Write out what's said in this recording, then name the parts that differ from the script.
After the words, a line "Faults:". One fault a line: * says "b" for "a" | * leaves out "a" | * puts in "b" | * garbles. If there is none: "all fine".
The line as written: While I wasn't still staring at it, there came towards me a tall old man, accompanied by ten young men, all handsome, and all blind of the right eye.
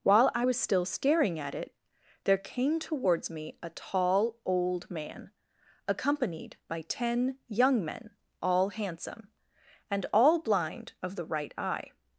While I was still staring at it, there came towards me a tall old man, accompanied by ten young men, all handsome, and all blind of the right eye.
Faults:
* says "was" for "wasn't"